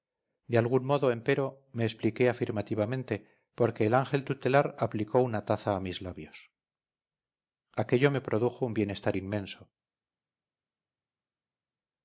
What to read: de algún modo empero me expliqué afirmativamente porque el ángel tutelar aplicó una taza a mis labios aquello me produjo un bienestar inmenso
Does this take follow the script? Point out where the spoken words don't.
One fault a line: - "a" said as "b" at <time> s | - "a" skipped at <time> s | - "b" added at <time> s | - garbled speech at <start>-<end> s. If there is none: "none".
none